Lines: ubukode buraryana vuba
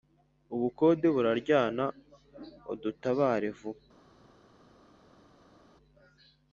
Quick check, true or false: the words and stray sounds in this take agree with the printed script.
false